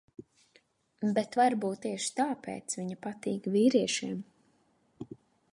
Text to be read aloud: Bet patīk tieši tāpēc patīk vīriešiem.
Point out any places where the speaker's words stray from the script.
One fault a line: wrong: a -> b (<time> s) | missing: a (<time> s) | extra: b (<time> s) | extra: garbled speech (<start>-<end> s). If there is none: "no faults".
wrong: patīk -> varbūt (1.4 s)
extra: viņa (2.8 s)